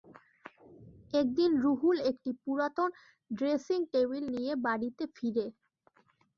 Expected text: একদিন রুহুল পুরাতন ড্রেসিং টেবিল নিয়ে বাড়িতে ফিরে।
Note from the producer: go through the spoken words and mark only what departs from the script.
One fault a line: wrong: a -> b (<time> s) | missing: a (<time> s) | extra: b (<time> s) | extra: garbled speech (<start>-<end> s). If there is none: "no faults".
extra: একটি (2.1 s)